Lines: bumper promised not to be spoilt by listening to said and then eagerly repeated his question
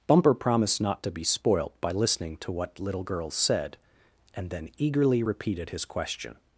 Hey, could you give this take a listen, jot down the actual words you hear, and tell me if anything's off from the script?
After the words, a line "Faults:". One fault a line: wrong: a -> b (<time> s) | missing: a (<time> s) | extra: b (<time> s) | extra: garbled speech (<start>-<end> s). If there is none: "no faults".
bumper promised not to be spoilt by listening to what little girls said and then eagerly repeated his question
Faults:
extra: what little girls (2.5 s)